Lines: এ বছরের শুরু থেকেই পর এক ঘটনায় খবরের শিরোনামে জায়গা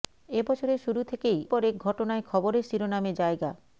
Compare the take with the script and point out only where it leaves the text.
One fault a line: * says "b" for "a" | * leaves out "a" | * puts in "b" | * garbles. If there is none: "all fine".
all fine